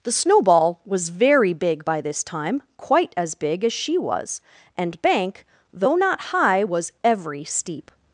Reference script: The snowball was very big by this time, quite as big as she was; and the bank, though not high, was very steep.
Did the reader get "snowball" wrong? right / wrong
right